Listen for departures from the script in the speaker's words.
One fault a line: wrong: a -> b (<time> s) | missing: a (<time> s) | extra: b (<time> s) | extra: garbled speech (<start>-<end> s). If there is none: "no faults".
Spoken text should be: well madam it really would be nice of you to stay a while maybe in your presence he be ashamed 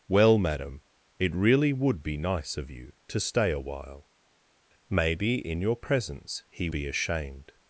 no faults